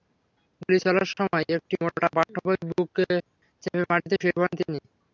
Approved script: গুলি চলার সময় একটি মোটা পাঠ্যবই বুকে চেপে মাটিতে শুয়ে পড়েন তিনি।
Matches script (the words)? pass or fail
pass